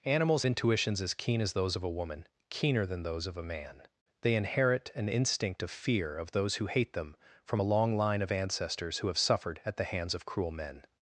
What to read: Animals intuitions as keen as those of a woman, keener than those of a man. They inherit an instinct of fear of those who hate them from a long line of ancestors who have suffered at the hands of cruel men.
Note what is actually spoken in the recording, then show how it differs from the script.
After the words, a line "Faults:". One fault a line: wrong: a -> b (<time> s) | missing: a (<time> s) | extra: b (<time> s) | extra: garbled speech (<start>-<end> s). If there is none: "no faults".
Animals intuitions as keen as those of a woman, keener than those of a man. They inherit an instinct of fear of those who hate them from a long line of ancestors who have suffered at the hands of cruel men.
Faults:
no faults